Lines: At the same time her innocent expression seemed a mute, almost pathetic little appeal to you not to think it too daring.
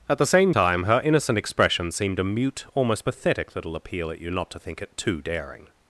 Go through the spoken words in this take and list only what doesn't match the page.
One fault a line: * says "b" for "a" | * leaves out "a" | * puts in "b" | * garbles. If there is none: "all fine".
* says "at" for "to"